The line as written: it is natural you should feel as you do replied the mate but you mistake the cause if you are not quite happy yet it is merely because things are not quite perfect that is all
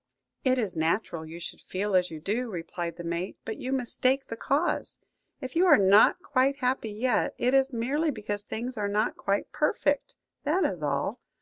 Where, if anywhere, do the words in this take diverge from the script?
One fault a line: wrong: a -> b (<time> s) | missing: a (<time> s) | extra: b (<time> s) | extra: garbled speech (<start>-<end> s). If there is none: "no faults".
no faults